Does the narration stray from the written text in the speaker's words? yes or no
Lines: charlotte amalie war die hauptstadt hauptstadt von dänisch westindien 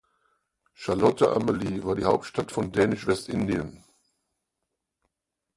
yes